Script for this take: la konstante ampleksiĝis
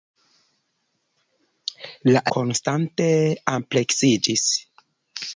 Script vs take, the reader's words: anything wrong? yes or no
no